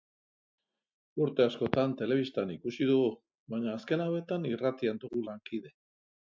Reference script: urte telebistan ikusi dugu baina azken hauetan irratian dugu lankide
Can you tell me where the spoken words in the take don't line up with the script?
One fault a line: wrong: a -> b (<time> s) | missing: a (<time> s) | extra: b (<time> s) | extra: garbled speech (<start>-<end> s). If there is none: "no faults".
extra: askotan (1.5 s)